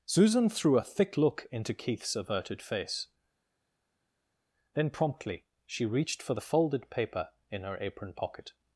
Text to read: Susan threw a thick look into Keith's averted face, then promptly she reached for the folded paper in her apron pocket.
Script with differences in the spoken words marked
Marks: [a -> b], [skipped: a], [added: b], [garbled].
Susan threw a thick look into Keith's averted face, then promptly she reached for the folded paper in her apron pocket.